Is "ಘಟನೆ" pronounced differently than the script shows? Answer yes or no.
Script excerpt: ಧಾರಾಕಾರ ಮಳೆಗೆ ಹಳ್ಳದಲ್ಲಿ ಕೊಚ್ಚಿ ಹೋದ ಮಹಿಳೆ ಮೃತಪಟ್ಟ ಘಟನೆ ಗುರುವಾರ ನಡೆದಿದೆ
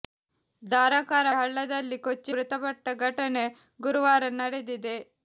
no